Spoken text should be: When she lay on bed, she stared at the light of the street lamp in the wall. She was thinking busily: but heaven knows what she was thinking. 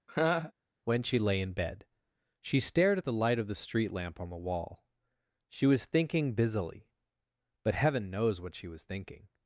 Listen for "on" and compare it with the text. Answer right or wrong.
wrong